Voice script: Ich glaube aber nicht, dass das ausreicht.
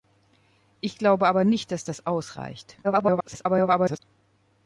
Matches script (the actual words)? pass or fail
fail